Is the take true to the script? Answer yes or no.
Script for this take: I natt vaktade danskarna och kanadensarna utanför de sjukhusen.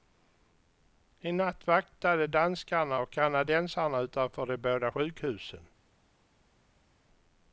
no